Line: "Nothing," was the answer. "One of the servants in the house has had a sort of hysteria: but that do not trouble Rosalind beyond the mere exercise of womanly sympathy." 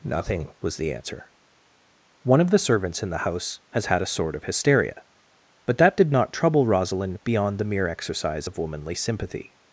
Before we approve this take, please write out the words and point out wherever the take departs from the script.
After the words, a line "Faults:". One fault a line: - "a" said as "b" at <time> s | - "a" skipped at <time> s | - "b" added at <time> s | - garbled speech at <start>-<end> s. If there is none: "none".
"Nothing," was the answer. "One of the servants in the house has had a sort of hysteria: but that did not trouble Rosalind beyond the mere exercise of womanly sympathy."
Faults:
- "do" said as "did" at 6.0 s